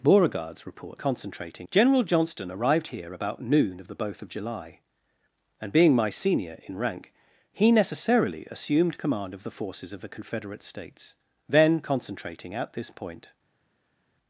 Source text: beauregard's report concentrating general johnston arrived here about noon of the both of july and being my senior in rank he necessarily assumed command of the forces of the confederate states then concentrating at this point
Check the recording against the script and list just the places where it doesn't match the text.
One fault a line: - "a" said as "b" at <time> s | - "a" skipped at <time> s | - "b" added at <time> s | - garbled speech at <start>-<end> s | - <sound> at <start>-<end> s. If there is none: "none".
none